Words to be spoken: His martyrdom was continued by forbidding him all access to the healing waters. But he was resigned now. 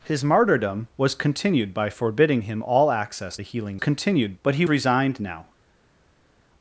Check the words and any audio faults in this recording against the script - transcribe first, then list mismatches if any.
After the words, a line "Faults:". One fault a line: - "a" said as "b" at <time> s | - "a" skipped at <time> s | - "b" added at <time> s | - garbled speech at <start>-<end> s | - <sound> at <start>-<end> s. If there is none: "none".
His martyrdom was continued by forbidding him all access the healing continued. But he resigned now.
Faults:
- "to" skipped at 3.4 s
- "waters" said as "continued" at 3.8 s
- "was" skipped at 4.7 s